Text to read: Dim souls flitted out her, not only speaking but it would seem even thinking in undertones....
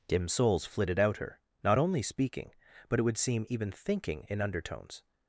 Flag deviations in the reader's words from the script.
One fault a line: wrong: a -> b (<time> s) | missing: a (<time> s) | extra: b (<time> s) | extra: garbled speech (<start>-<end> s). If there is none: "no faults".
no faults